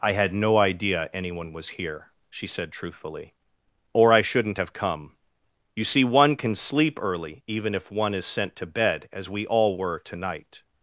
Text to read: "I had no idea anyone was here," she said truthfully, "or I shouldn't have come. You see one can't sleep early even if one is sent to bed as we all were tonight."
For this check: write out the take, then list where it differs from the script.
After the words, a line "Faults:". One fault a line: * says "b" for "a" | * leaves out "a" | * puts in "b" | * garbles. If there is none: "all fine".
"I had no idea anyone was here," she said truthfully, "or I shouldn't have come. You see one can sleep early even if one is sent to bed as we all were tonight."
Faults:
* says "can" for "can't"